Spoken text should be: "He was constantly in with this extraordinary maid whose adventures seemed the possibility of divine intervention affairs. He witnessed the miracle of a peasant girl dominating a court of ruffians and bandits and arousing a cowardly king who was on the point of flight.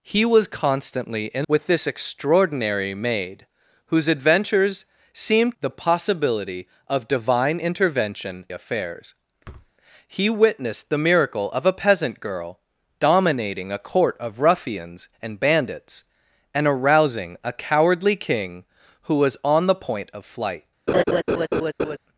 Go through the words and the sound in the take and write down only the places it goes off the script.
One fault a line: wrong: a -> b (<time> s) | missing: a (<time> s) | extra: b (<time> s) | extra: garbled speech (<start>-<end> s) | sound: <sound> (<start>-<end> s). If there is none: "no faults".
sound: thud (9.4-9.7 s)
sound: laugh (20.9-22.0 s)